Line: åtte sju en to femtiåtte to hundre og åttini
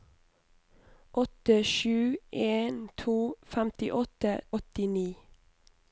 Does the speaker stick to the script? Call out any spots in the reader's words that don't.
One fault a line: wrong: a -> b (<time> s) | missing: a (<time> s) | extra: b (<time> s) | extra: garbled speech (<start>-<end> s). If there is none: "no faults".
missing: to hundre og (4.3 s)